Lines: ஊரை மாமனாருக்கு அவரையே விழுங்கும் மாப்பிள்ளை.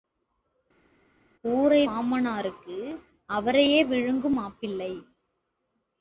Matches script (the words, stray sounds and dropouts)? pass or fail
pass